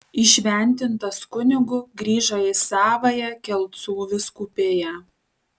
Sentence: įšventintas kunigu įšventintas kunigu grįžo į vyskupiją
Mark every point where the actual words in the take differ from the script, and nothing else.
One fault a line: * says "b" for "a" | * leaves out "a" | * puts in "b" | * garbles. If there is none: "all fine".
* says "grįžo į savąją kelcų" for "įšventintas kunigu grįžo į"